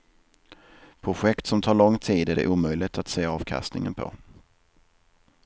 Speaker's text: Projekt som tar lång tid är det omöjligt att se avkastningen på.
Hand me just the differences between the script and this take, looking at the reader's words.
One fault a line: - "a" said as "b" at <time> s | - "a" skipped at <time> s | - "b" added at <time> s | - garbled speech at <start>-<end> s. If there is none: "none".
none